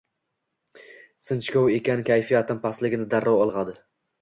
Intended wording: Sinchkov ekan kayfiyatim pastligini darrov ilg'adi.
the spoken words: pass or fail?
pass